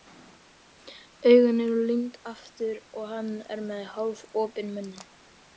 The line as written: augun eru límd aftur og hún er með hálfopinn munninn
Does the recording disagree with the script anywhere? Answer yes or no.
yes